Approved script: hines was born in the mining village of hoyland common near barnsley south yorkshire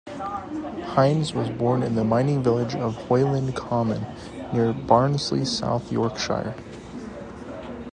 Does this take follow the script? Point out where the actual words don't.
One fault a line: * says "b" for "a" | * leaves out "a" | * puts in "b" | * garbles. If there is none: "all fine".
all fine